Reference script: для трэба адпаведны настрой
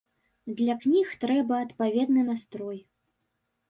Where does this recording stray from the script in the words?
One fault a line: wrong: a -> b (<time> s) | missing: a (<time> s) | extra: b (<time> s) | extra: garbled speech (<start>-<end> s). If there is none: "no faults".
extra: кніг (0.8 s)